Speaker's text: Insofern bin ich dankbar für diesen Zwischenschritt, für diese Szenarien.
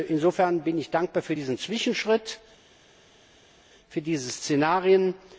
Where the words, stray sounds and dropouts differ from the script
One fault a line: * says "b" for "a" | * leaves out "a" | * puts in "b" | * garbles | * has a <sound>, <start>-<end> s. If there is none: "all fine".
all fine